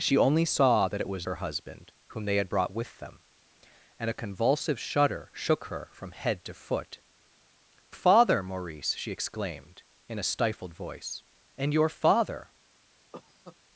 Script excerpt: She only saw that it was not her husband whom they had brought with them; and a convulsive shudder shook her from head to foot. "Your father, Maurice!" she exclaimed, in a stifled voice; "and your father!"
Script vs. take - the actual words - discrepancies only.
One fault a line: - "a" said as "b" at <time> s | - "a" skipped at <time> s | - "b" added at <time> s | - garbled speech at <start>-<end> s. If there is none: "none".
- "not" skipped at 1.3 s
- "Your" skipped at 7.0 s